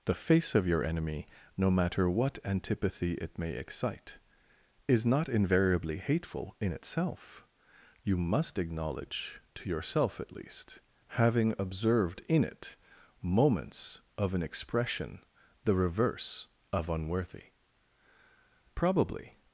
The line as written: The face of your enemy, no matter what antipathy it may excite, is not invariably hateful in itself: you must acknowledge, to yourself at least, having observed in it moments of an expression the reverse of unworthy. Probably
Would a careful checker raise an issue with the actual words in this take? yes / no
no